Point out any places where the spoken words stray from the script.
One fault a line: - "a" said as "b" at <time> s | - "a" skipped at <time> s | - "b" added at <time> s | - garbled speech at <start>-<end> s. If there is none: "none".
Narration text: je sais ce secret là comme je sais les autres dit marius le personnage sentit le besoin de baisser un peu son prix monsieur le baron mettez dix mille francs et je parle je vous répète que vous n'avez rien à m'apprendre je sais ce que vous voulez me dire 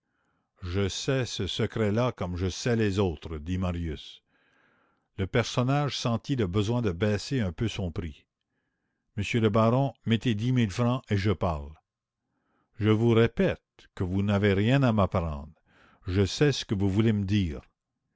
none